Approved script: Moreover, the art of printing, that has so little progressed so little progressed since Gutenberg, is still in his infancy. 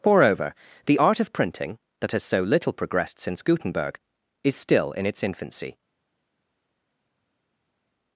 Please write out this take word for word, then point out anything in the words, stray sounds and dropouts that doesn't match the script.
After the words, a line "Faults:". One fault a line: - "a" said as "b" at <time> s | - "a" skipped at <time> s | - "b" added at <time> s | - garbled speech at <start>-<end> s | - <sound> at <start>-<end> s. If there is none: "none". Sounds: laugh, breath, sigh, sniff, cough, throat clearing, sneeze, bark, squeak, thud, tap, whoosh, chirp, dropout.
Moreover, the art of printing, that has so little progressed since Gutenberg, is still in its infancy.
Faults:
- "so little progressed" skipped at 3.2 s
- "his" said as "its" at 5.1 s